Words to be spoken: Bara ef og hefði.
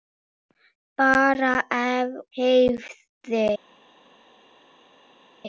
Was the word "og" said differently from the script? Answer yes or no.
yes